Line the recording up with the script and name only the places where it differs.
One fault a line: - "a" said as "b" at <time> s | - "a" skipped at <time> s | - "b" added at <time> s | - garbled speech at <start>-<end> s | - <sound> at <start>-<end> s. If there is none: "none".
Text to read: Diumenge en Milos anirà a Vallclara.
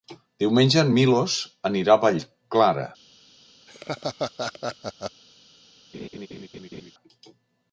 - laugh at 3.7-5.2 s
- laugh at 5.9-6.9 s